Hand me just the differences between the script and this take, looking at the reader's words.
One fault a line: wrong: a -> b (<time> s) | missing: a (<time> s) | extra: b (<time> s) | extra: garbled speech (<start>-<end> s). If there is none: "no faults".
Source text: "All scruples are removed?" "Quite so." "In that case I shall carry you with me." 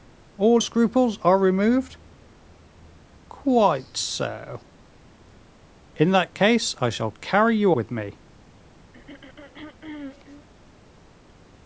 no faults